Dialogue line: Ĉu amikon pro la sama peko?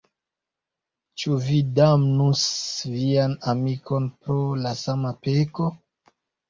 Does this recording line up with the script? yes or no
no